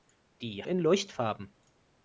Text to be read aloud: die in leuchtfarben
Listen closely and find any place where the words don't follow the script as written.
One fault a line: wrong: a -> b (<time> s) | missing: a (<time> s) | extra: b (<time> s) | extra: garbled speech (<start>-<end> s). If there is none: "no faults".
no faults